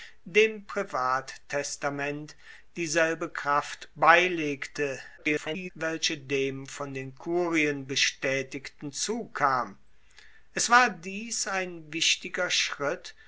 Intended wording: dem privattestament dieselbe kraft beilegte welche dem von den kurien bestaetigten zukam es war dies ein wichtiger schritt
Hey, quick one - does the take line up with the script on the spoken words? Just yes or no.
no